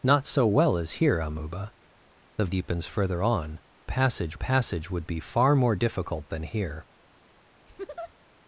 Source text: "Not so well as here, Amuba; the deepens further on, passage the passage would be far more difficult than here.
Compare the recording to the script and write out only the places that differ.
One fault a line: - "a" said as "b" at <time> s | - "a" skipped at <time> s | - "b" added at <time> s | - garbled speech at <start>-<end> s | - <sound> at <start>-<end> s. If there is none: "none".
- laugh at 7.7-8.1 s